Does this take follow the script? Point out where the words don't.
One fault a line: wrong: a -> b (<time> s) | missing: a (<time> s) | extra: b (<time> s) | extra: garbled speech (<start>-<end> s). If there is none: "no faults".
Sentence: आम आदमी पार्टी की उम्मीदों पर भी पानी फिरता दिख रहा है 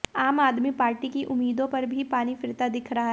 no faults